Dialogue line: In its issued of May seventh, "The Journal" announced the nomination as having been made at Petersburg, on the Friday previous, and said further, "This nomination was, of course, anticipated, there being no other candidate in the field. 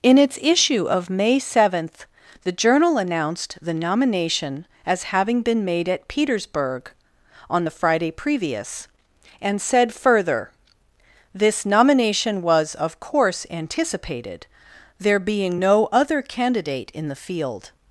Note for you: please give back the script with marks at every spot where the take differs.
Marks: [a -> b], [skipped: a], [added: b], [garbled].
In its [issued -> issue] of May seventh, "The Journal" announced the nomination as having been made at Petersburg, on the Friday previous, and said further, "This nomination was, of course, anticipated, there being no other candidate in the field.